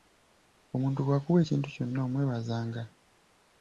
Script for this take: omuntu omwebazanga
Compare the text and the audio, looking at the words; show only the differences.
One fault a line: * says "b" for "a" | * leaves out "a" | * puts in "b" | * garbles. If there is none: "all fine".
* puts in "bw'akuwa ekintu kyonna"